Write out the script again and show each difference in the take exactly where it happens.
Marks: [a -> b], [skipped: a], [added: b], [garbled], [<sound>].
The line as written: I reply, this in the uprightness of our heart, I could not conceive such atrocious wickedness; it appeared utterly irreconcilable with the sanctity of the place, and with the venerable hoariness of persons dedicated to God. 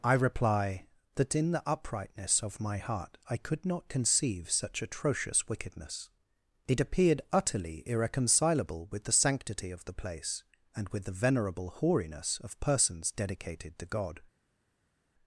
I reply, [this -> that] in the uprightness of [our -> my] heart, I could not conceive such atrocious wickedness; it appeared utterly irreconcilable with the sanctity of the place, and with the venerable hoariness of persons dedicated to God.